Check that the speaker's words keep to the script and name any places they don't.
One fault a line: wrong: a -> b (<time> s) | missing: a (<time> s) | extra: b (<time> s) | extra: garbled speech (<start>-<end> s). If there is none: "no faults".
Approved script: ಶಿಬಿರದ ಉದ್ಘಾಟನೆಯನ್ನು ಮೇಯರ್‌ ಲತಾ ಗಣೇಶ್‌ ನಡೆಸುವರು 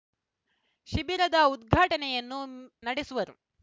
missing: ಮೇಯರ್ ಲತಾ ಗಣೇಶ್ (2.4 s)